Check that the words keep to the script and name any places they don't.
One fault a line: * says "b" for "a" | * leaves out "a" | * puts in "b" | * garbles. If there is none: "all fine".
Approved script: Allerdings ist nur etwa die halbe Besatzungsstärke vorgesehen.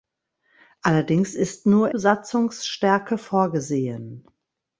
* leaves out "etwa die halbe"